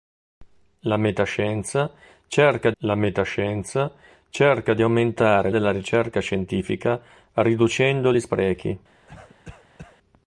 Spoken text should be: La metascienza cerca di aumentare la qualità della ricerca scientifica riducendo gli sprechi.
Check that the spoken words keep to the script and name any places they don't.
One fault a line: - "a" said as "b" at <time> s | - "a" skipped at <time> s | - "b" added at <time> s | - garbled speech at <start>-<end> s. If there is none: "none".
- "la metascienza cerca" added at 2.8 s
- "la qualità" skipped at 5.5 s